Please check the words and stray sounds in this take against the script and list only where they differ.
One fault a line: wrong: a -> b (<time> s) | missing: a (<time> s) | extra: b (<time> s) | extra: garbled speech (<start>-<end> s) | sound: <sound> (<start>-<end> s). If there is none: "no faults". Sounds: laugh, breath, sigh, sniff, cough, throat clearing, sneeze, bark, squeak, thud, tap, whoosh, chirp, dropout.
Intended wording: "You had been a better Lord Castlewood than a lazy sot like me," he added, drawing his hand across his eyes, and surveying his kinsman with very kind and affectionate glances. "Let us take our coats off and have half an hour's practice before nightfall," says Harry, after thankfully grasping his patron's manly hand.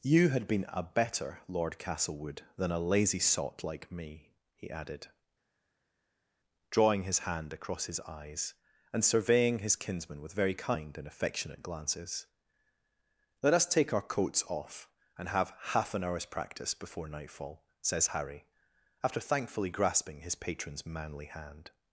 no faults